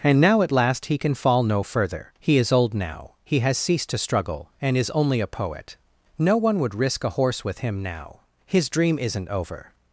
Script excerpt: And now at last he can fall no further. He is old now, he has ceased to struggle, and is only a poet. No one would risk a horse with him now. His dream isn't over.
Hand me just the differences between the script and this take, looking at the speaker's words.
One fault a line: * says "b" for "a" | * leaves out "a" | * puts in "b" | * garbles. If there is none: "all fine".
all fine